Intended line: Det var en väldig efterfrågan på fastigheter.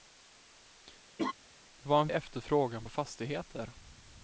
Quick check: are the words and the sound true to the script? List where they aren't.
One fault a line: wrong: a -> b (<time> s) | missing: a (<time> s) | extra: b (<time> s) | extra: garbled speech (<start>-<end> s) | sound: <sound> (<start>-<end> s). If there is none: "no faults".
sound: laugh (1.2-1.3 s)
missing: väldig (2.1 s)